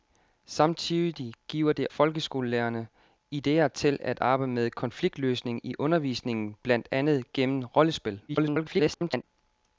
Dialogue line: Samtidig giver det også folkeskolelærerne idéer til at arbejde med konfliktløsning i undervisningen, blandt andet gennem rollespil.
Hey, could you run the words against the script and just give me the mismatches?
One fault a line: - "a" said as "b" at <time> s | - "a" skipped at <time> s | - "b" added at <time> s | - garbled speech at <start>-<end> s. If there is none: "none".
- "også" skipped at 1.9 s
- garbled speech at 8.3-9.2 s